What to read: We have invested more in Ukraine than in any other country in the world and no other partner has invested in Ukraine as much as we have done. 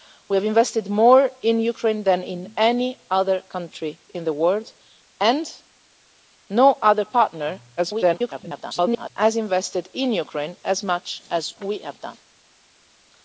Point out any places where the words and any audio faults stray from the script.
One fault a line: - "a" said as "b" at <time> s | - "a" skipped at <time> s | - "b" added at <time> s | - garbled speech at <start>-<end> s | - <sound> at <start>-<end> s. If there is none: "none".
- garbled speech at 7.8-9.1 s